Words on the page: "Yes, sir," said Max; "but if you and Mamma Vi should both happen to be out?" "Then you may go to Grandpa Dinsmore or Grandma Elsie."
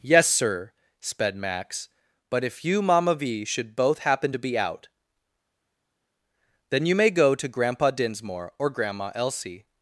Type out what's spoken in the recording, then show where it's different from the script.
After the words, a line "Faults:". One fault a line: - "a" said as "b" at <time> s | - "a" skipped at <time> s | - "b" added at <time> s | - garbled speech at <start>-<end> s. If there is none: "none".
"Yes, sir," sped Max; "but if you Mamma Vi should both happen to be out?" "Then you may go to Grandpa Dinsmore or Grandma Elsie."
Faults:
- "said" said as "sped" at 1.0 s
- "and" skipped at 2.8 s